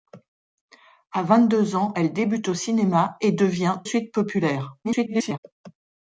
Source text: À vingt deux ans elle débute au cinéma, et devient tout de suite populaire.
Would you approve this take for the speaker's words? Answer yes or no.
no